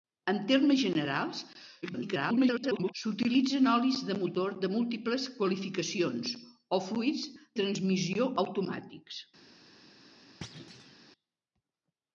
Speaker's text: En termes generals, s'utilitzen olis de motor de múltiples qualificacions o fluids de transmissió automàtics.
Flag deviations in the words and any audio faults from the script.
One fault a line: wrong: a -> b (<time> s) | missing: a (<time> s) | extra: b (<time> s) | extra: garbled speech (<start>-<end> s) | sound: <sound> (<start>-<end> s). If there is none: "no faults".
extra: garbled speech (1.8-2.9 s)
missing: de (7.3 s)
sound: thud (10.4-11.0 s)